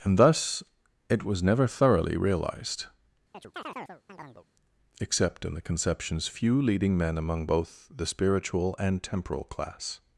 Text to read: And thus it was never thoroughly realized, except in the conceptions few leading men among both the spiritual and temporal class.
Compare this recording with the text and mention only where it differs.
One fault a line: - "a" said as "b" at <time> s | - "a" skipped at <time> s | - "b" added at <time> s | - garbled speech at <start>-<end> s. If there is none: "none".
none